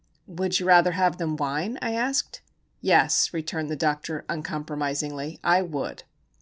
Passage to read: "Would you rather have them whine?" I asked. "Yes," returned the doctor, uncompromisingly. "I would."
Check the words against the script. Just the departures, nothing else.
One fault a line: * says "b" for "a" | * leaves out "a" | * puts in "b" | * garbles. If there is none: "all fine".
all fine